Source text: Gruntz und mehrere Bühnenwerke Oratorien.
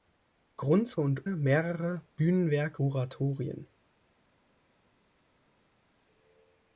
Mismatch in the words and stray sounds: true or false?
false